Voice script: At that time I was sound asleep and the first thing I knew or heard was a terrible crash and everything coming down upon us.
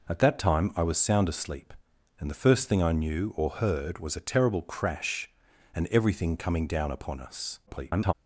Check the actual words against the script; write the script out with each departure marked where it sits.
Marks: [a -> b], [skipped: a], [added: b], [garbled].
At that time I was sound asleep and the first thing I knew or heard was a terrible crash and everything coming down upon us. [garbled]